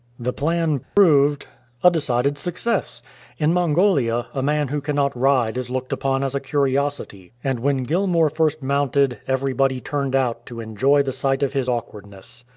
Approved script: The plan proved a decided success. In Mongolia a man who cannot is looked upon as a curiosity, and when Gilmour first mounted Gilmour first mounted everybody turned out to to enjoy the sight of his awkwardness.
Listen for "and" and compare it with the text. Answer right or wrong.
right